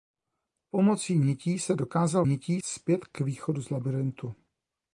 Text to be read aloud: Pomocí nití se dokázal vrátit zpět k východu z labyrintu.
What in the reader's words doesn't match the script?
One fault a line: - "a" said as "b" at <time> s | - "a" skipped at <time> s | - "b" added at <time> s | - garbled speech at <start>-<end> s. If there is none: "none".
- "vrátit" said as "nití" at 2.2 s